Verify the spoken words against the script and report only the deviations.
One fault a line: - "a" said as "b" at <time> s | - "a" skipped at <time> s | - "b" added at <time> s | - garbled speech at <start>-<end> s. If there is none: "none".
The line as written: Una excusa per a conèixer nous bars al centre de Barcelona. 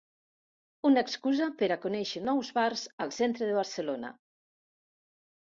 none